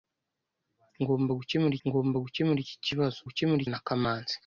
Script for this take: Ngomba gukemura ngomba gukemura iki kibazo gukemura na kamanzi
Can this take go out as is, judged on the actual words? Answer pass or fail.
pass